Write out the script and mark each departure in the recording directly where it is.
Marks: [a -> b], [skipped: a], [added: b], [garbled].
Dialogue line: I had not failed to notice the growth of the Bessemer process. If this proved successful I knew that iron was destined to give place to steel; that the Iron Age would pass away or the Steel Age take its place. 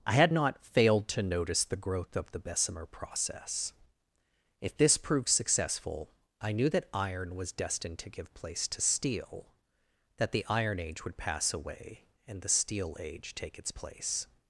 I had not failed to notice the growth of the Bessemer process. If this proved successful I knew that iron was destined to give place to steel; that the Iron Age would pass away [or -> and] the Steel Age take its place.